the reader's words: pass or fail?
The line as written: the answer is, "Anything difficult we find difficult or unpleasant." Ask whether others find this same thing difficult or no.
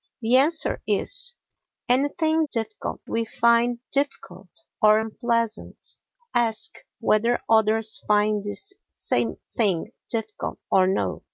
pass